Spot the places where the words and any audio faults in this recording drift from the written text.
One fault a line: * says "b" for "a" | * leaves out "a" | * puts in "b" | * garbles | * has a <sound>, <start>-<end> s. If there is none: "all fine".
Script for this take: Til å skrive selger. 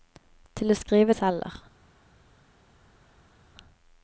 all fine